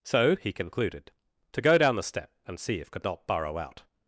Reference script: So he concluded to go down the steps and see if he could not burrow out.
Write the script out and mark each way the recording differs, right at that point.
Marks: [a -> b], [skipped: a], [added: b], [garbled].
So he concluded to go down the [steps -> step] and see if [skipped: he] could not burrow out.